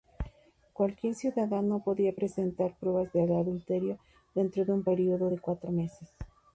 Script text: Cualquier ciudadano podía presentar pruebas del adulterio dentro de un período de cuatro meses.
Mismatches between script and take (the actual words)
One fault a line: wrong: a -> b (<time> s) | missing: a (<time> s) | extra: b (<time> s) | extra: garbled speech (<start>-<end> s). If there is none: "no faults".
no faults